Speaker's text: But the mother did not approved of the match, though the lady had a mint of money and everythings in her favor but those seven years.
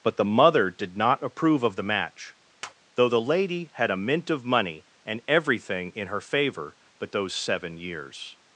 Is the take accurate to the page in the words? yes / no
no